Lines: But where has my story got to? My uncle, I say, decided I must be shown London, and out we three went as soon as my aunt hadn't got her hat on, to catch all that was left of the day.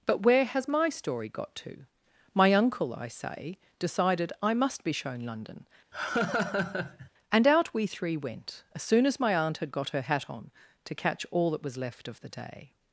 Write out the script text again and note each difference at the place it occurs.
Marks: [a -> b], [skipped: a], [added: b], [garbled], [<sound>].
But where has my story got to? My uncle, I say, decided I must be shown London, [laugh] and out we three went as soon as my aunt [hadn't -> had] got her hat on, to catch all that was left of the day.